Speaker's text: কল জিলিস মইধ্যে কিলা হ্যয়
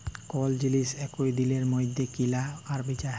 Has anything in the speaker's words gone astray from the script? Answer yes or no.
yes